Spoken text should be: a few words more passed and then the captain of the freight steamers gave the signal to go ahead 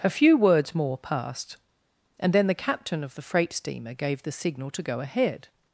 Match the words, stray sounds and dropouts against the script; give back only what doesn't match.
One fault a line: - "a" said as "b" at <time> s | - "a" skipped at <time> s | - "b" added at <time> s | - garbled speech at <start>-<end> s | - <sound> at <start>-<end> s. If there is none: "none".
- "steamers" said as "steamer" at 3.5 s